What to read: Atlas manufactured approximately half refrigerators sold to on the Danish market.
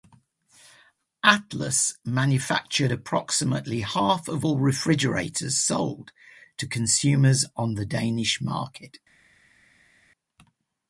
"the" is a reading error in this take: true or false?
false